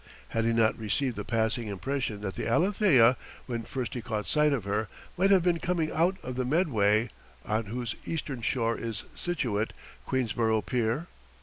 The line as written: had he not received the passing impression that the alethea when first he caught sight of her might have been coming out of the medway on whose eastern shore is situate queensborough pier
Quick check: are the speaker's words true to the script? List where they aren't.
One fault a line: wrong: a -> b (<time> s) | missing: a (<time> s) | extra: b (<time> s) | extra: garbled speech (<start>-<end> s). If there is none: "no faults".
no faults